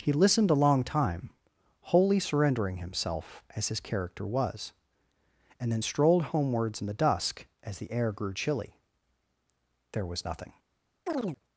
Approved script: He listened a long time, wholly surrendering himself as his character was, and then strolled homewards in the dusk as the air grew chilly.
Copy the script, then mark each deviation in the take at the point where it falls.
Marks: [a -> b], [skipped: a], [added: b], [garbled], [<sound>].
He listened a long time, wholly surrendering himself as his character was, and then strolled homewards in the dusk as the air grew chilly. [added: There was nothing] [chirp]